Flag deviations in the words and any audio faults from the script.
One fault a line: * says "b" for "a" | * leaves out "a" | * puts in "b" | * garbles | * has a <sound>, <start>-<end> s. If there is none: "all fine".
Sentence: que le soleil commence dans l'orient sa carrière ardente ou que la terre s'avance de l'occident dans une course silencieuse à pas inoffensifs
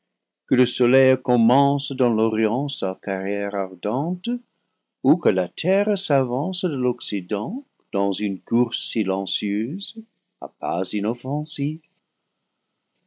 all fine